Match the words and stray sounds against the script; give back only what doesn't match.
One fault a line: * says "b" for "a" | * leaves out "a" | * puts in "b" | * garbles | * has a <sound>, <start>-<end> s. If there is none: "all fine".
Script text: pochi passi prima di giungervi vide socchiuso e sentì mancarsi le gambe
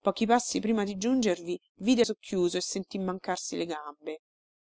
all fine